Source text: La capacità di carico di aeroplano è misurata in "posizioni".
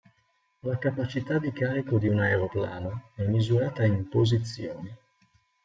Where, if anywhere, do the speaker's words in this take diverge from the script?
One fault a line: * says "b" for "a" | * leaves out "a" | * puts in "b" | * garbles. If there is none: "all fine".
* puts in "un"